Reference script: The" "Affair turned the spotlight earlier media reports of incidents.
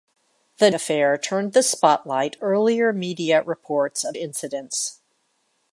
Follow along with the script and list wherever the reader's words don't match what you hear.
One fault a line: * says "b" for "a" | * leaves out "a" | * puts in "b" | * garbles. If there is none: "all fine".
all fine